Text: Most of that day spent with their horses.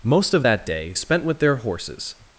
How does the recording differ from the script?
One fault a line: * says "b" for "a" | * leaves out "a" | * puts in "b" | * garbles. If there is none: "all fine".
all fine